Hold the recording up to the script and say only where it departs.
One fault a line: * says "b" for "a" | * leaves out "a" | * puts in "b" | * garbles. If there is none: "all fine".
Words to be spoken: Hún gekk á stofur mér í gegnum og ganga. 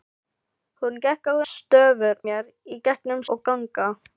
all fine